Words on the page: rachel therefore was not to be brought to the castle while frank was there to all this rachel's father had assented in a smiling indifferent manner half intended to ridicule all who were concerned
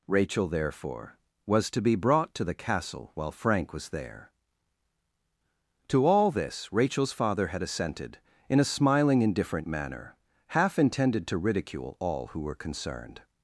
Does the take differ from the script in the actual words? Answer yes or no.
yes